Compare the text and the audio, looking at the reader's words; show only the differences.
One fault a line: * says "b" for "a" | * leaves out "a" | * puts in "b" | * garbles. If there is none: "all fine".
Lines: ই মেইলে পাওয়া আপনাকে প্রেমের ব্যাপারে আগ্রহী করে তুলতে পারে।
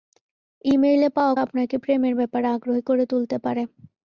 all fine